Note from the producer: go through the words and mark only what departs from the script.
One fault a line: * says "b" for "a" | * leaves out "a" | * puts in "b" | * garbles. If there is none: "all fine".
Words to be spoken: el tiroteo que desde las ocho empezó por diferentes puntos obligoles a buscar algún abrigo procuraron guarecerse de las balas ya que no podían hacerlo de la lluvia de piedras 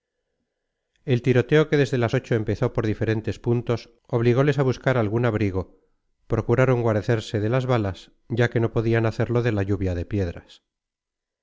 all fine